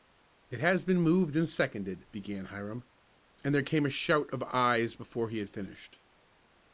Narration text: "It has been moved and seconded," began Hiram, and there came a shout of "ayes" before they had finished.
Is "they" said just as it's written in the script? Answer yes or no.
no